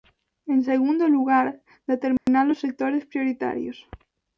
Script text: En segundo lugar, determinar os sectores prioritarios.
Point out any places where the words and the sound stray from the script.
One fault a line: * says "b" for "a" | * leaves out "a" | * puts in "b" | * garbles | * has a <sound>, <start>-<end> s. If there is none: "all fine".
* has a dropout, 2.2-2.3 s